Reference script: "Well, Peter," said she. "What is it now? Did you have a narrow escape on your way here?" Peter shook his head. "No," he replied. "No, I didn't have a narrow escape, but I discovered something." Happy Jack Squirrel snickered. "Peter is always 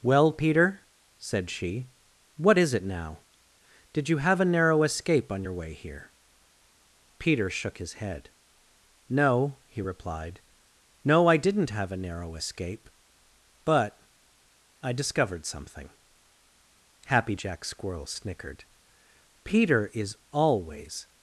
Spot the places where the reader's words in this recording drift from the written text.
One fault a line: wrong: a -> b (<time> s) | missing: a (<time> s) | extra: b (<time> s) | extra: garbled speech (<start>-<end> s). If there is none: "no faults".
no faults